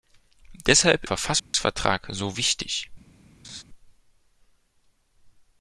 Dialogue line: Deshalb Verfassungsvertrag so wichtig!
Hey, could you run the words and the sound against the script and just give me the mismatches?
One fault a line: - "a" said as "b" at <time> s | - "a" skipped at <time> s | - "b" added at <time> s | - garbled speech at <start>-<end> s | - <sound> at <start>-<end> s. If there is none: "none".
- dropout at 1.4-1.5 s
- laugh at 3.4-3.6 s